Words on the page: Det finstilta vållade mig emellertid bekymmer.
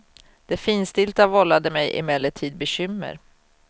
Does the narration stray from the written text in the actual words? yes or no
no